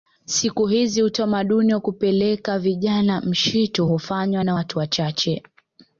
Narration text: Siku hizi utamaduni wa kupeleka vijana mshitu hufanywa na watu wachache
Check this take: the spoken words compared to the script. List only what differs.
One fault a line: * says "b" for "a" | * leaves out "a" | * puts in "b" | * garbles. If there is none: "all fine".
all fine